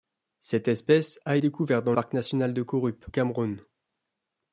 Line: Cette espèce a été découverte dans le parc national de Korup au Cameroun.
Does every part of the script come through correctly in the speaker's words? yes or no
no